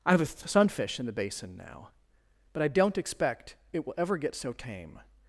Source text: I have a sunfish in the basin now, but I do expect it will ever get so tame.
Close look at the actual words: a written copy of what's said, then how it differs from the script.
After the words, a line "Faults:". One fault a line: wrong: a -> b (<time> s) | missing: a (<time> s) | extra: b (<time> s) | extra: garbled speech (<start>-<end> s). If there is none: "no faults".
I have a sunfish in the basin now, but I don't expect it will ever get so tame.
Faults:
wrong: do -> don't (2.7 s)